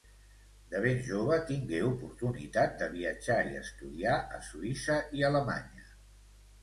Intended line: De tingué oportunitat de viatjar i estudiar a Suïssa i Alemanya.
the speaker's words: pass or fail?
fail